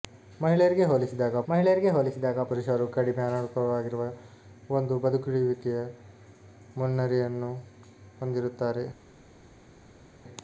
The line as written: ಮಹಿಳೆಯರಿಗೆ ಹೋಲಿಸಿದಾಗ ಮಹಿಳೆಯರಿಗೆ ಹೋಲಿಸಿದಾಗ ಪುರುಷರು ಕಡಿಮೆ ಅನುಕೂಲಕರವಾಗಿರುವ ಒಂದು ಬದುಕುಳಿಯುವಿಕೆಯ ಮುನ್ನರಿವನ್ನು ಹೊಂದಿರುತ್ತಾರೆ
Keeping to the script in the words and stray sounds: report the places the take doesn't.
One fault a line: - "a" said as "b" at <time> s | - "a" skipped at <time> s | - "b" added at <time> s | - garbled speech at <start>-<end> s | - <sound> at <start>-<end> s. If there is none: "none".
none